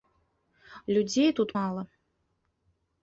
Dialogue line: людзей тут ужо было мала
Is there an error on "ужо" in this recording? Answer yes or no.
yes